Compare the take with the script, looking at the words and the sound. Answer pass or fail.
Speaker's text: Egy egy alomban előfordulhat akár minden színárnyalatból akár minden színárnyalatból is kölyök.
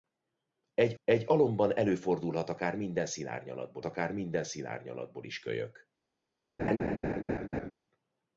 fail